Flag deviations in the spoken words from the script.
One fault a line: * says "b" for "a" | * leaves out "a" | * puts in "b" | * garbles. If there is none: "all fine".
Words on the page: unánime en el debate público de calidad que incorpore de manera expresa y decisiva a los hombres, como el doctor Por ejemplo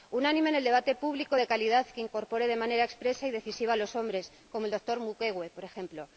* puts in "Mukwege"